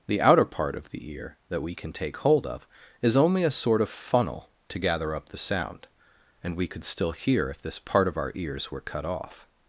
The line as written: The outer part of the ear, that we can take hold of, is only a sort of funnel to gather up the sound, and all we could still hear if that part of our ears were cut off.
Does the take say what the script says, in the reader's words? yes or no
no